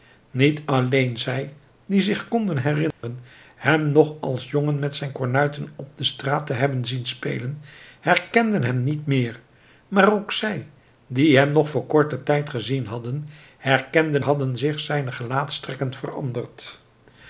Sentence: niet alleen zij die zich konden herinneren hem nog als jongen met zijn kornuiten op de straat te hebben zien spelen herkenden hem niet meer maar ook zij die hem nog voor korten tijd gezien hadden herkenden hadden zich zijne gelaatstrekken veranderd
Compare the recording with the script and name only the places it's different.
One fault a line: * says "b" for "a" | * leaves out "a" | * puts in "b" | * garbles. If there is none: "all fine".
all fine